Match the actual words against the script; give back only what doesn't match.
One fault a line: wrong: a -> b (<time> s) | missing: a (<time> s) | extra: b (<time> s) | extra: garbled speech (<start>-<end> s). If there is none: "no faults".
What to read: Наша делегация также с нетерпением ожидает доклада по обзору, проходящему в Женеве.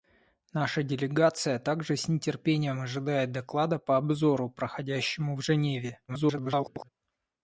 extra: garbled speech (6.1-6.9 s)